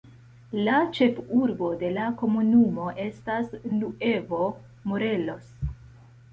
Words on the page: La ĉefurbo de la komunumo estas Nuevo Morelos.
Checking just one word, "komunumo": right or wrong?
right